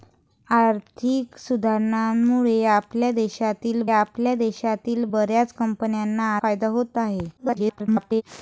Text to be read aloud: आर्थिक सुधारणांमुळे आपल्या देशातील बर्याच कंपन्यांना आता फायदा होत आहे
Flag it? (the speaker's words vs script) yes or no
yes